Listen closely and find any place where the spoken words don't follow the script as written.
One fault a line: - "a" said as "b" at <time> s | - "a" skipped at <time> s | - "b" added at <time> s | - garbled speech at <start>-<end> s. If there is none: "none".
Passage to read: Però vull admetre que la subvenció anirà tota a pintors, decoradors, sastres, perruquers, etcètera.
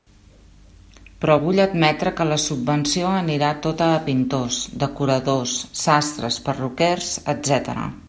none